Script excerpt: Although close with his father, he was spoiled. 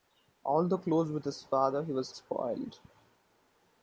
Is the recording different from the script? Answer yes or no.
no